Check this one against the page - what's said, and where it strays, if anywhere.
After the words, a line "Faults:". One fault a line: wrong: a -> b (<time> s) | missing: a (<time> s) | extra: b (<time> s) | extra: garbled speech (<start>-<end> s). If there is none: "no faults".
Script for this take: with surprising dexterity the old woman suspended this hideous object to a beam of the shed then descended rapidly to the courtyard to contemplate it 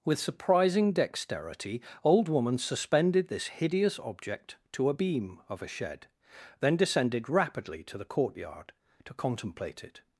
with surprising dexterity old woman suspended this hideous object to a beam of a shed then descended rapidly to the courtyard to contemplate it
Faults:
missing: the (1.8 s)
wrong: the -> a (5.6 s)